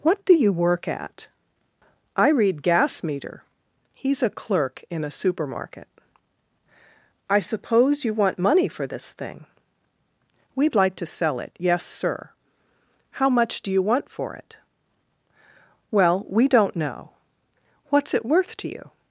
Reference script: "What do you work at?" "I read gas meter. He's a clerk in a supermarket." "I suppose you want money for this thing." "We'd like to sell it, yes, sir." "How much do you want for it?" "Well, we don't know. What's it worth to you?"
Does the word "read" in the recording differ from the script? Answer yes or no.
no